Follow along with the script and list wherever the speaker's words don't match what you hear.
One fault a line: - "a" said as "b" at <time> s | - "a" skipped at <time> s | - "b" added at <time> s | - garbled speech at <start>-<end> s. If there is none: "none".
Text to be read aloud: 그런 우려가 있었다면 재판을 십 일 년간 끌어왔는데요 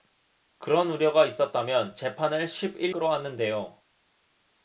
- "년간" skipped at 3.0 s